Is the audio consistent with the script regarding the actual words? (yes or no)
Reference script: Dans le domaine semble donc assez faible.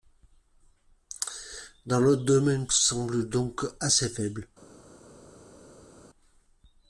yes